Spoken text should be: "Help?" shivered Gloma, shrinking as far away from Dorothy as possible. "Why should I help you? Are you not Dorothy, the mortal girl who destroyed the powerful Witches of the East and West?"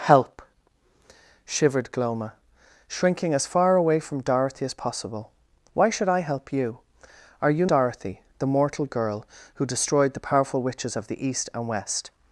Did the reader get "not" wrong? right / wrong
wrong